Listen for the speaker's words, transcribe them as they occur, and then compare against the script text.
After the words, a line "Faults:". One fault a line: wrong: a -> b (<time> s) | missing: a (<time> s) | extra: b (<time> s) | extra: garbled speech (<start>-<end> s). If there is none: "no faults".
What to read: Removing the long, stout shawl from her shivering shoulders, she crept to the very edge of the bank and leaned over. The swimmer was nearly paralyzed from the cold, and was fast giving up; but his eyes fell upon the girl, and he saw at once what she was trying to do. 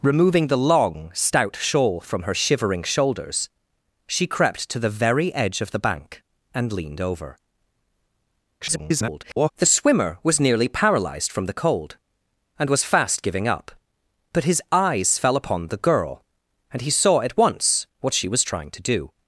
Removing the long, stout shawl from her shivering shoulders, she crept to the very edge of the bank and leaned over. [garbled] The swimmer was nearly paralyzed from the cold, and was fast giving up; but his eyes fell upon the girl, and he saw at once what she was trying to do.
Faults:
extra: garbled speech (8.6-9.5 s)